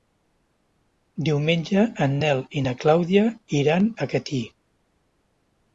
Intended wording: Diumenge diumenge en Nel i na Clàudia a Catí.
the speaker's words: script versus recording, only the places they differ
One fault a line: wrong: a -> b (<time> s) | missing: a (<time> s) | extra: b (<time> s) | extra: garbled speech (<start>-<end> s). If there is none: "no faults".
missing: diumenge (1.8 s)
extra: iran (3.6 s)